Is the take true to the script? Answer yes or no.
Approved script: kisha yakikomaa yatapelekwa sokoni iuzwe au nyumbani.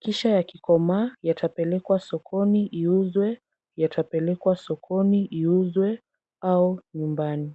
no